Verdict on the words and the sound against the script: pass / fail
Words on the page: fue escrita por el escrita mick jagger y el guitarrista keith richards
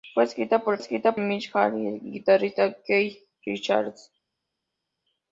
pass